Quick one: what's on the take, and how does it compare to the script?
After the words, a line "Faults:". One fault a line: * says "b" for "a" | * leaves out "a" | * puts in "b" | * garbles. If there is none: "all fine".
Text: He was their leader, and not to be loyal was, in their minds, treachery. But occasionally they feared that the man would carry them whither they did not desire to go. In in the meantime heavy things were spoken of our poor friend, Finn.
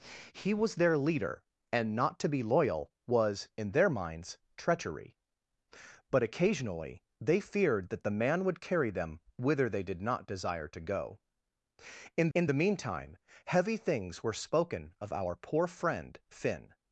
He was their leader, and not to be loyal was, in their minds, treachery. But occasionally they feared that the man would carry them whither they did not desire to go. In in the meantime heavy things were spoken of our poor friend, Finn.
Faults:
all fine